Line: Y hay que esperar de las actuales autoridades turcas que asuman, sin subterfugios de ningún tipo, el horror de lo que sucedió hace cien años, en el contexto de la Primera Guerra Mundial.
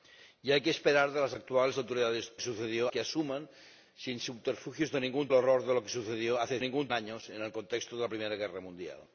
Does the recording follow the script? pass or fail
fail